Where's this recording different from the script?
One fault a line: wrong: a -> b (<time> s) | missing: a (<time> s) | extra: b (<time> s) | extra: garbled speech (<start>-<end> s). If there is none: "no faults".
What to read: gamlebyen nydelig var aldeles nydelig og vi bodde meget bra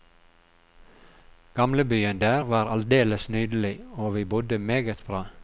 wrong: nydelig -> der (2.2 s)